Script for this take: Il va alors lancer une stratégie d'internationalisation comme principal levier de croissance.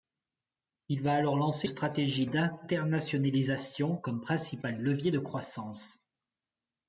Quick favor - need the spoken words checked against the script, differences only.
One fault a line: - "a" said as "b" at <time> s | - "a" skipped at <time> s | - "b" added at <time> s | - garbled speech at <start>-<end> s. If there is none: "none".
- "une" skipped at 1.7 s